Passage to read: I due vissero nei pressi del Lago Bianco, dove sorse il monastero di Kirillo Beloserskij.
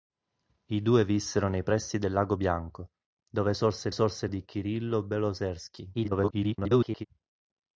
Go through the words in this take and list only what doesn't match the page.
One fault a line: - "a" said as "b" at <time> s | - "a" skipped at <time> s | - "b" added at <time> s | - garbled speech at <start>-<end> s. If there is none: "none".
- "monastero" said as "sorse" at 3.9 s
- garbled speech at 5.9-7.1 s